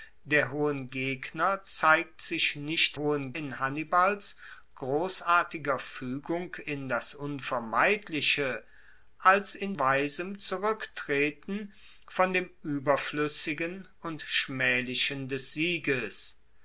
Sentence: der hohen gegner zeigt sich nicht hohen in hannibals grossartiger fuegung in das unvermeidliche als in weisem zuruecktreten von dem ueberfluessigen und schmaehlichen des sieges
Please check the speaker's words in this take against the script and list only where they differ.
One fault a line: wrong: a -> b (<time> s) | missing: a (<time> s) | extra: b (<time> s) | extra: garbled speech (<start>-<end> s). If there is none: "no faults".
no faults